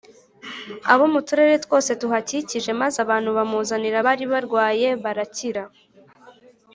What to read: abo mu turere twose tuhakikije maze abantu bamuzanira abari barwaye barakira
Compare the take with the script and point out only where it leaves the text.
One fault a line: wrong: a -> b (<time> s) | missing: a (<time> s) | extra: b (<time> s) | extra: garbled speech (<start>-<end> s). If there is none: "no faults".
no faults